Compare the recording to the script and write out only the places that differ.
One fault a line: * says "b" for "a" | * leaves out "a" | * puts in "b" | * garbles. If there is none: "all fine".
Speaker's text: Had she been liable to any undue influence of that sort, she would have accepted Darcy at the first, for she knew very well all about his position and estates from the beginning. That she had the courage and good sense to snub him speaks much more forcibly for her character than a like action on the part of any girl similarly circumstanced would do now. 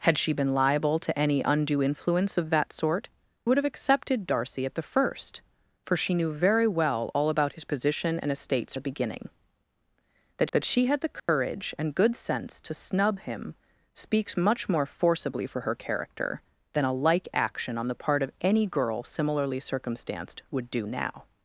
* leaves out "she"
* leaves out "from"
* puts in "that"